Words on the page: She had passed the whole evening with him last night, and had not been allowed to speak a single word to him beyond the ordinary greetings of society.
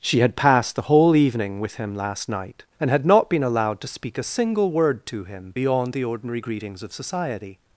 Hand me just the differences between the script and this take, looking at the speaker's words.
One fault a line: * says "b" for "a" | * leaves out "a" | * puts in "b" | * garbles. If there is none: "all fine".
all fine